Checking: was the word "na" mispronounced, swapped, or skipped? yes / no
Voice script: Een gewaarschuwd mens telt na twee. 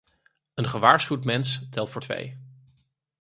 yes